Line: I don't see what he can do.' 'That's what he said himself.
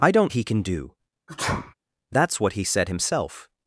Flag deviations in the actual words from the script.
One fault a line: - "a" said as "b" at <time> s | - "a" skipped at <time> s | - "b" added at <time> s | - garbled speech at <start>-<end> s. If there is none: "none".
- "see what" skipped at 0.3 s